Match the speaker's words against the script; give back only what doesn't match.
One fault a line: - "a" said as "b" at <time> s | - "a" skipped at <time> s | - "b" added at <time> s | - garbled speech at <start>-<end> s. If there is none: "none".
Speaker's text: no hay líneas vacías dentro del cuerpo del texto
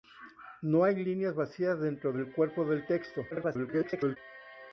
- garbled speech at 3.3-4.2 s